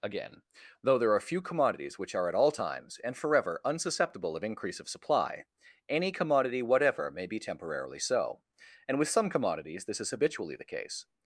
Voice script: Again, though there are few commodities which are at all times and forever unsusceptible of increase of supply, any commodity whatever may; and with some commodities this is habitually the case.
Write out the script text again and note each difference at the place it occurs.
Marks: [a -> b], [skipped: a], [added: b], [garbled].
Again, though there are few commodities which are at all times and forever unsusceptible of increase of supply, any commodity whatever may; [added: be temporarily so] and with some commodities this is habitually the case.